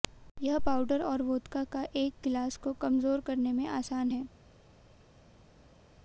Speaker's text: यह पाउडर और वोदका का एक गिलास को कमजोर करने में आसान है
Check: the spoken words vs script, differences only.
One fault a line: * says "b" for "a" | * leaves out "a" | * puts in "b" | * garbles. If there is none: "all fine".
all fine